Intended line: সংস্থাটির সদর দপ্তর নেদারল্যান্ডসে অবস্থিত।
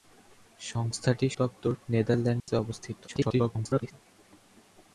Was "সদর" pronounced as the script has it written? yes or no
no